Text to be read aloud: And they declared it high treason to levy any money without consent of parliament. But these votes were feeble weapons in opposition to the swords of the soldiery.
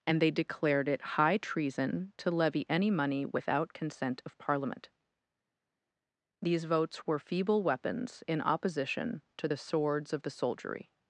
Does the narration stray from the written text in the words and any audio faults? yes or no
yes